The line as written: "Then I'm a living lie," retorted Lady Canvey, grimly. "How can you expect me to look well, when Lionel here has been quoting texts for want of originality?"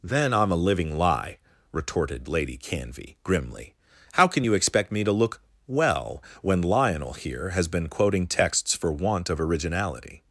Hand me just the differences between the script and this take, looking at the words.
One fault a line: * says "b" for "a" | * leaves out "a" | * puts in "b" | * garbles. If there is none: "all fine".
all fine